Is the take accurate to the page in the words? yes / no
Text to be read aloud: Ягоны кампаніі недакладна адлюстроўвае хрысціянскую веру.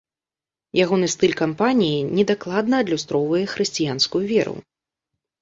no